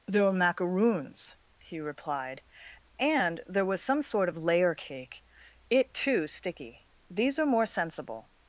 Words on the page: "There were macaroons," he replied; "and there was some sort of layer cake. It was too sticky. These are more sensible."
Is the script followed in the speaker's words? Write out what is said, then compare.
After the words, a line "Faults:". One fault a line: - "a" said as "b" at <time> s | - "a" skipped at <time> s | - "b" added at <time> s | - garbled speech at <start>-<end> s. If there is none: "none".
"There were macaroons," he replied; "and there was some sort of layer cake. It too sticky. These are more sensible."
Faults:
- "was" skipped at 6.0 s